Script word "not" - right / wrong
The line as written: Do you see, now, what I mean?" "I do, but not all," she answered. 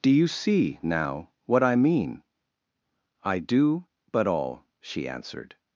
wrong